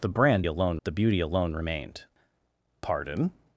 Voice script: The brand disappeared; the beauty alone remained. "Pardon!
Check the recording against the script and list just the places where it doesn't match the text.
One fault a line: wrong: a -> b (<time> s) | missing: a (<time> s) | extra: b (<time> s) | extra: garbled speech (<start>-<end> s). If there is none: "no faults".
wrong: disappeared -> alone (0.4 s)